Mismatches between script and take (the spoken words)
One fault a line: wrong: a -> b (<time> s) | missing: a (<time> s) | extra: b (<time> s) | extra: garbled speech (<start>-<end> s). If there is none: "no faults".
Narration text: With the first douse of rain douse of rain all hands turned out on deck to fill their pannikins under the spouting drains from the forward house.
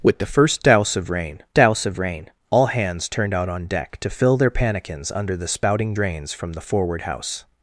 no faults